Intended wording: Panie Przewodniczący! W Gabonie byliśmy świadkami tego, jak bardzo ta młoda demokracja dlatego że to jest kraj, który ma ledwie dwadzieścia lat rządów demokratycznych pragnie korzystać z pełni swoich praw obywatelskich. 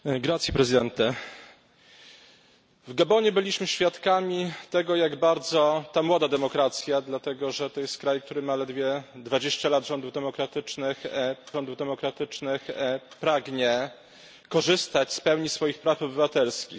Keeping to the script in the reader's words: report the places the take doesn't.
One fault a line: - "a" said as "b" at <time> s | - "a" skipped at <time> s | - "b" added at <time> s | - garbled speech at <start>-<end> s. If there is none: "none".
- "rządów demokratycznych" added at 11.5 s